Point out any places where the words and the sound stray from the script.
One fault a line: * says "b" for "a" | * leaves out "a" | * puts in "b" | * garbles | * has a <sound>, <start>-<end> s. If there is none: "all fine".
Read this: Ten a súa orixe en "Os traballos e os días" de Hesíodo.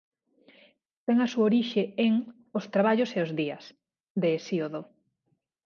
all fine